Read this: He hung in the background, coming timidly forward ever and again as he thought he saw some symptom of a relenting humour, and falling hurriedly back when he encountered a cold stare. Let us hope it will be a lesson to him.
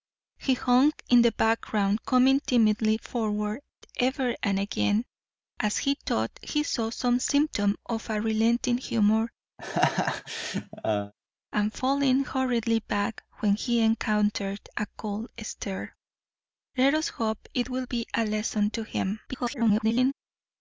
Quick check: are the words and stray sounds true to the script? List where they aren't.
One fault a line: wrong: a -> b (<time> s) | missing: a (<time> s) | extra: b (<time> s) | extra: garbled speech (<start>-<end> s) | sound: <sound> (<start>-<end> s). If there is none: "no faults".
sound: laugh (9.6-11.1 s)
extra: garbled speech (19.3-20.1 s)